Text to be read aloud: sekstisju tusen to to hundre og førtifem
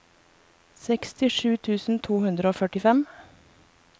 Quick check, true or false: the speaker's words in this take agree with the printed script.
false